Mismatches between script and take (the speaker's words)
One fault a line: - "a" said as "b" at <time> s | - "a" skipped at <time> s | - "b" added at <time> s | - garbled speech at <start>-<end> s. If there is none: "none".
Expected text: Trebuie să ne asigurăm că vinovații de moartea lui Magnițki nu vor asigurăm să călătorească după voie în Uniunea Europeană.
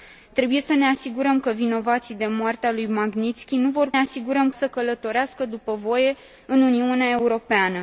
none